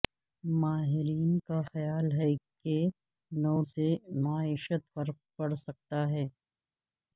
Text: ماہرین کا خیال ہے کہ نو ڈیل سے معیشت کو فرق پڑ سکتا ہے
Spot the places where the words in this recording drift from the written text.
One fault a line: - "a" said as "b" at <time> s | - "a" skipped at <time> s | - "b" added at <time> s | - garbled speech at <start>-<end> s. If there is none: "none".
- "ڈیل" skipped at 3.5 s
- "کو" skipped at 4.8 s